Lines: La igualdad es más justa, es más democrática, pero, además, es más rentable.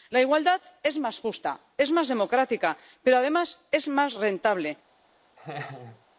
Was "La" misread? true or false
false